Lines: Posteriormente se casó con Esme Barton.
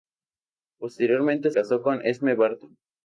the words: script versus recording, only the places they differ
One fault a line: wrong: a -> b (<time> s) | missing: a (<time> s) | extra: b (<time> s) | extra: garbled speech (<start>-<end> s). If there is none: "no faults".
missing: se (1.5 s)